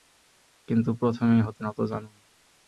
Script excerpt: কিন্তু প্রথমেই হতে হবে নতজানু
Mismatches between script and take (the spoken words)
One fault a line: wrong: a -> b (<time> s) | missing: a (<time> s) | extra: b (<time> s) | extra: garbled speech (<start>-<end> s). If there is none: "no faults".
missing: হবে (1.6 s)